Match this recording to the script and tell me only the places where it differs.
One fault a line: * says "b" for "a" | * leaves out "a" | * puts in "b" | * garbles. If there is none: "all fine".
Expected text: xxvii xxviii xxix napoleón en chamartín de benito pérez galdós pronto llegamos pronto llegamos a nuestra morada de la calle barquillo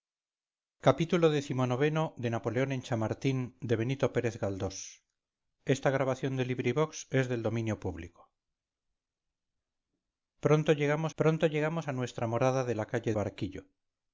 all fine